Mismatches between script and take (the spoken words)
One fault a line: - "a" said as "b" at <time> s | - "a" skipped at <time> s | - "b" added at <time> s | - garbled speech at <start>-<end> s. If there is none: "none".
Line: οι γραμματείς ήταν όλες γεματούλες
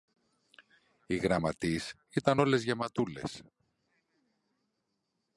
none